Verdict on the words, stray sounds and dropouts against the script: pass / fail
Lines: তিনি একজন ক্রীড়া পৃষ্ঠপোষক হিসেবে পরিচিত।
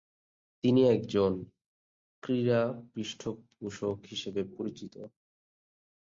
pass